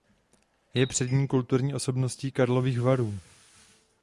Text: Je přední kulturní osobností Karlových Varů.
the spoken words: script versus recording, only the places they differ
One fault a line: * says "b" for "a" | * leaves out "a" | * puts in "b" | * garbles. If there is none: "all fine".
all fine